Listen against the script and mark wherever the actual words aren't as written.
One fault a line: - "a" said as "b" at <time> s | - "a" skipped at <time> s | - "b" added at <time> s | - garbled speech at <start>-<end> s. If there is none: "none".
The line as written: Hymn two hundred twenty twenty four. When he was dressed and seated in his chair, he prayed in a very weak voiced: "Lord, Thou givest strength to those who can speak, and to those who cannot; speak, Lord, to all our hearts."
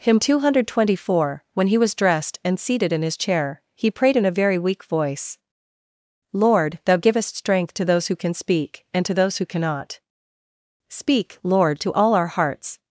- "twenty" skipped at 1.1 s
- "voiced" said as "voice" at 4.8 s